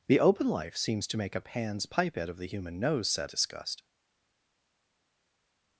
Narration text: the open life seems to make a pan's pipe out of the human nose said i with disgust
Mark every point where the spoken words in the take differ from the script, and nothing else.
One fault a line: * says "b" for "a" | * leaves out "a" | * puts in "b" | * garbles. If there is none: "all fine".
* leaves out "i with"